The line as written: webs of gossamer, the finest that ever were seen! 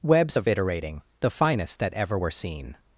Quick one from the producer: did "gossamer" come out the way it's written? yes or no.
no